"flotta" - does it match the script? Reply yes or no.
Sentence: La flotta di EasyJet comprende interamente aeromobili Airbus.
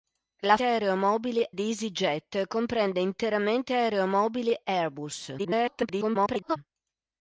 no